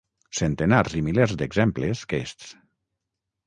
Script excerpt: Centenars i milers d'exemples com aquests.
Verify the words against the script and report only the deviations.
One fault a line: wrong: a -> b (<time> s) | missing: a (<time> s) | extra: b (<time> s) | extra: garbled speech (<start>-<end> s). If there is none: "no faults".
missing: com (2.0 s)